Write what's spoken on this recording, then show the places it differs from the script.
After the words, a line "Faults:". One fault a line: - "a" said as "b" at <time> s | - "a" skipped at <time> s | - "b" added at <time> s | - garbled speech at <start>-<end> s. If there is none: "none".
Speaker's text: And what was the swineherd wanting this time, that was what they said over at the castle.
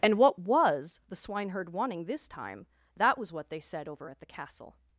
And what was the swineherd wanting this time, that was what they said over at the castle.
Faults:
none